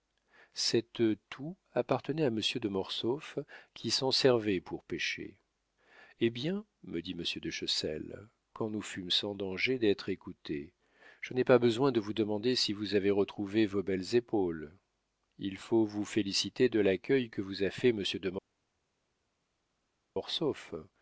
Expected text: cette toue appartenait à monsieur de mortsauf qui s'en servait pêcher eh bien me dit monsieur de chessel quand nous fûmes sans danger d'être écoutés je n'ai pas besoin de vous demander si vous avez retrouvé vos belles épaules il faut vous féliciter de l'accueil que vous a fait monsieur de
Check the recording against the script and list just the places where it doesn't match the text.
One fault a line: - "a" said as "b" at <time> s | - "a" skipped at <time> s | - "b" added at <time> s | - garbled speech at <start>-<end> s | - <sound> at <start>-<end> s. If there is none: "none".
- "pour" added at 4.6 s